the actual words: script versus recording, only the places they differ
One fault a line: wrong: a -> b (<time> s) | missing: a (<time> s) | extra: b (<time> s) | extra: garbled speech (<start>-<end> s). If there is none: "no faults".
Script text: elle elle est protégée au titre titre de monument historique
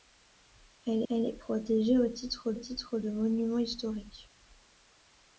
no faults